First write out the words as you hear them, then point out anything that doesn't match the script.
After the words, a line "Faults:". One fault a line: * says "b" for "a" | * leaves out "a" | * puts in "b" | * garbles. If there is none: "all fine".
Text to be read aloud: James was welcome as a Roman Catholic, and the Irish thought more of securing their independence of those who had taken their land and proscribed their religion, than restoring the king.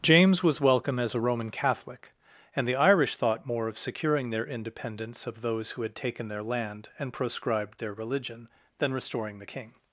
James was welcome as a Roman Catholic, and the Irish thought more of securing their independence of those who had taken their land and proscribed their religion, than restoring the king.
Faults:
all fine